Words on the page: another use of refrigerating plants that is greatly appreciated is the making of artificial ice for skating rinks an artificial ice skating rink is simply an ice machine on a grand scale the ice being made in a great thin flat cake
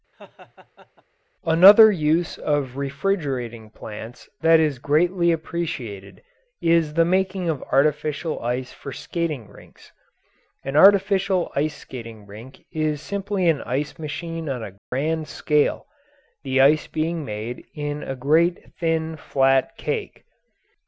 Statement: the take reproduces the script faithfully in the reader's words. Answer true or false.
true